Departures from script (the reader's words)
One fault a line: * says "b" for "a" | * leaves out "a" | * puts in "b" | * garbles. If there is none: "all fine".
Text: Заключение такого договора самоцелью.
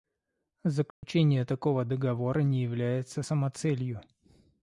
* puts in "не является"